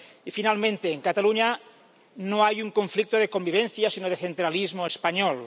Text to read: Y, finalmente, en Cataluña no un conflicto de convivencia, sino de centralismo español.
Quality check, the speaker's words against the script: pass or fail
fail